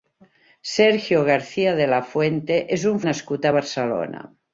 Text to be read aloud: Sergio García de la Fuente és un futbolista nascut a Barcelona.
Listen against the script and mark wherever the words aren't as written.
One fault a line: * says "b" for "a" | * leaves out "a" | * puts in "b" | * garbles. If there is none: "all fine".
* leaves out "futbolista"